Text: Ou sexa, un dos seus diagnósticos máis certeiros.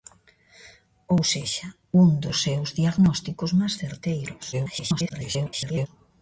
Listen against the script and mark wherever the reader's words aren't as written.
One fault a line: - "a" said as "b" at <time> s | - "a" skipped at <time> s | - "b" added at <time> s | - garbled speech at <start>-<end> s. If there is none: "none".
- garbled speech at 4.5-5.9 s